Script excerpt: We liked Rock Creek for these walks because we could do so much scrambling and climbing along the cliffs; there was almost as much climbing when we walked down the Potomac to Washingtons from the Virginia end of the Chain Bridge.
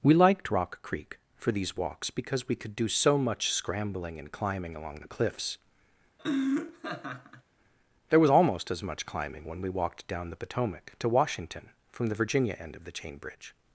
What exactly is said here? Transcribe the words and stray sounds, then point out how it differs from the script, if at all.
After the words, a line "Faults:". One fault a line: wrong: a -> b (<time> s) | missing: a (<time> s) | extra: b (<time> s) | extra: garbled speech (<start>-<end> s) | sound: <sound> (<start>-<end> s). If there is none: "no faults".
We liked Rock Creek for these walks because we could do so much scrambling and climbing along the cliffs; there was almost as much climbing when we walked down the Potomac to Washington from the Virginia end of the Chain Bridge.
Faults:
sound: laugh (6.2-7.4 s)
wrong: Washingtons -> Washington (11.1 s)